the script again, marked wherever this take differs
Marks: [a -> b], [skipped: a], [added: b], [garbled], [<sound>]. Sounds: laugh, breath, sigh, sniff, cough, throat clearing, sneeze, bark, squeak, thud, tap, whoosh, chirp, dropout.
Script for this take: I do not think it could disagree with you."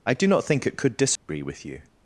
I do not think it could disagree [dropout] with you."